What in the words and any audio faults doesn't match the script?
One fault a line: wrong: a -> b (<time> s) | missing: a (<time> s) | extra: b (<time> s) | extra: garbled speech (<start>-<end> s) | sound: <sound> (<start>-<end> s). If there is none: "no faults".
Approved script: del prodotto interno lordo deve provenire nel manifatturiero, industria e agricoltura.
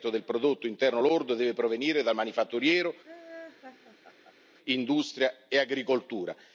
wrong: nel -> dal (2.0 s)
sound: laugh (3.0-4.5 s)